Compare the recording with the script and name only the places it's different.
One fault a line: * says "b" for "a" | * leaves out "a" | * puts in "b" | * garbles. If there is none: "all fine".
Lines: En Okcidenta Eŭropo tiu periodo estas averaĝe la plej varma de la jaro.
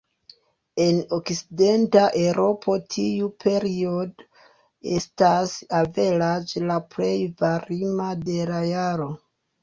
all fine